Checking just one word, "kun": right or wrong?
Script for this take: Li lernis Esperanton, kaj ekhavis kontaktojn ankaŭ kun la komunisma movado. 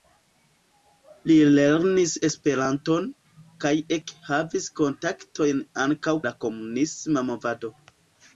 wrong